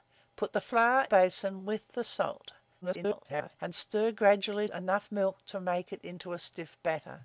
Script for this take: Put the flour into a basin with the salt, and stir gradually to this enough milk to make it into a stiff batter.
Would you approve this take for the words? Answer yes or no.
no